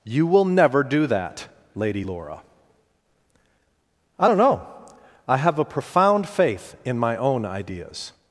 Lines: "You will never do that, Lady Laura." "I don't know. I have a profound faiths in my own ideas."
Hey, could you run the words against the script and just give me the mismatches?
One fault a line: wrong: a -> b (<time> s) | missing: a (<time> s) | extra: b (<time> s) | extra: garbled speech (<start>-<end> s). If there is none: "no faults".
wrong: faiths -> faith (6.3 s)